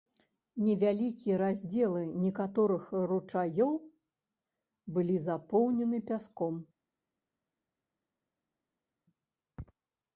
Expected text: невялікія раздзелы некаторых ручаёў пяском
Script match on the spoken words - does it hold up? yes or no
no